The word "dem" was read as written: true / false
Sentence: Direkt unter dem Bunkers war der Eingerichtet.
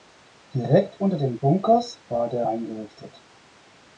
true